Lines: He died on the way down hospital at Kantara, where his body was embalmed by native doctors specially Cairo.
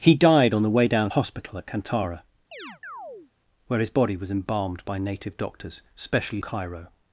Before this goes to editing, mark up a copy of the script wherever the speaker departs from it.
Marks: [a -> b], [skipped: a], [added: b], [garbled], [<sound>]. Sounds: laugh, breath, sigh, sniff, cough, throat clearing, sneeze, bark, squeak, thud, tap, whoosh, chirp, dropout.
He died on the way down hospital at Kantara, [chirp] where his body was embalmed by native doctors specially Cairo.